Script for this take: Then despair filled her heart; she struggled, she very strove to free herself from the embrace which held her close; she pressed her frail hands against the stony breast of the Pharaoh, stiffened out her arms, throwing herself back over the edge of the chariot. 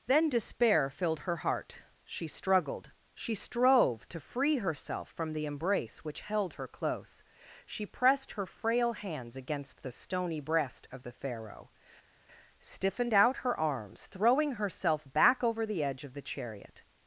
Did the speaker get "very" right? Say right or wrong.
wrong